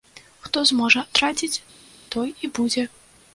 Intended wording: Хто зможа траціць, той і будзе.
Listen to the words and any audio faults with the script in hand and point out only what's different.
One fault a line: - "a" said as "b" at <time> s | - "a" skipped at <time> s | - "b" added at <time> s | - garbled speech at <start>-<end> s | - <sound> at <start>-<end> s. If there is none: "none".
none